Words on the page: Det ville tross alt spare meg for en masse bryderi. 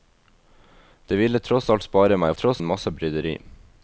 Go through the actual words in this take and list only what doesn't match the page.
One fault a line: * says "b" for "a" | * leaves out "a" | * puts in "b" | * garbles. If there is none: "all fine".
* says "tross" for "for"